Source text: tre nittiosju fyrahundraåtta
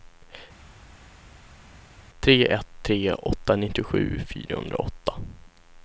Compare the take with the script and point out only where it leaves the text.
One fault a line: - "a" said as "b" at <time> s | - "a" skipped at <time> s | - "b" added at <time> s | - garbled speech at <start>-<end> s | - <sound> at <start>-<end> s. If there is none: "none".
- "ett tre åtta" added at 2.5 s